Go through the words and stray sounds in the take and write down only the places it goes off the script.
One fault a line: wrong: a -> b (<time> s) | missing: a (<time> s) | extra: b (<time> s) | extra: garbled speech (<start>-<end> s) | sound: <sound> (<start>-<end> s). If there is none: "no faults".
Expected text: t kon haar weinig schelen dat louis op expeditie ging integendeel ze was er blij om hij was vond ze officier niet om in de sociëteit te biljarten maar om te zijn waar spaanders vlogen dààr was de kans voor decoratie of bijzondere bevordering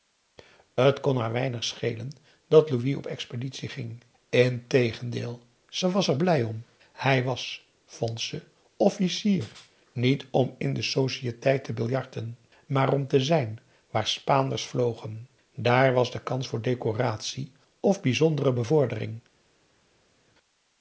no faults